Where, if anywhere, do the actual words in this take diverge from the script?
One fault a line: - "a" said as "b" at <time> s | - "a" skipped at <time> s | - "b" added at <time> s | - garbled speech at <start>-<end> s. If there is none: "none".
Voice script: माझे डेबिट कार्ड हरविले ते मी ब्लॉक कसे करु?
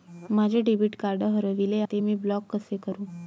none